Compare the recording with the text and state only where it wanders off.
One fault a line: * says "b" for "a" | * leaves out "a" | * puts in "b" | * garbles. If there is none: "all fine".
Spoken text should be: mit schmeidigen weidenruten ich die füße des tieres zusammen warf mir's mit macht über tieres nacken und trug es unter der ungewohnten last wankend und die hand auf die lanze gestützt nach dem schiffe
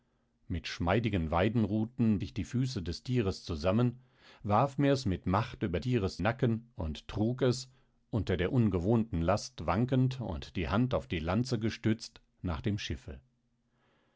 all fine